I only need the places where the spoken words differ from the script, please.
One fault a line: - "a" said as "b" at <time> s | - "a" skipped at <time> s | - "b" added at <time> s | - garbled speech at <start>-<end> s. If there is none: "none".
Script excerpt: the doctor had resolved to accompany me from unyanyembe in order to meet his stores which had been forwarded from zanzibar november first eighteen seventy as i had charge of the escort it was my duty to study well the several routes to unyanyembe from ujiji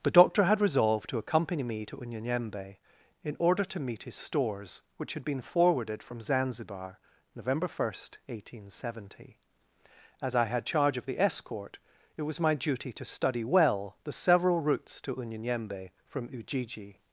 - "from" said as "to" at 1.9 s